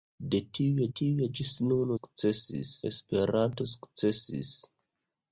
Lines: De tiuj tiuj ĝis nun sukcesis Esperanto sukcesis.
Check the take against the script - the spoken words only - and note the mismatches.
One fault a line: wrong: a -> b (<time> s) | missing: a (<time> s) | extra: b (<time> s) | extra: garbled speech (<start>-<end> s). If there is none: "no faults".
no faults